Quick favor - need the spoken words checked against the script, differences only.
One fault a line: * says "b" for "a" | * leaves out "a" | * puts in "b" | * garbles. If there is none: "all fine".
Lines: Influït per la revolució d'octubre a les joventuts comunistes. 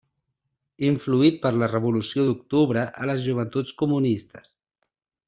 all fine